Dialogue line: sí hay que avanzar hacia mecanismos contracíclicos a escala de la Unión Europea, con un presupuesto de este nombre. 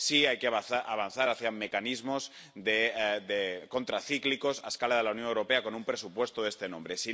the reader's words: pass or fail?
pass